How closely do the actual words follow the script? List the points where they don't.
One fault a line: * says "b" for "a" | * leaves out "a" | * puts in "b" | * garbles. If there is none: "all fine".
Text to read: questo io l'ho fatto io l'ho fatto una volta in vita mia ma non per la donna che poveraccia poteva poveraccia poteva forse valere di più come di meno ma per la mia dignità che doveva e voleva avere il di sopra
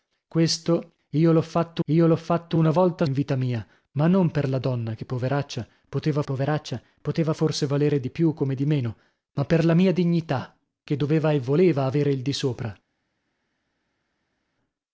all fine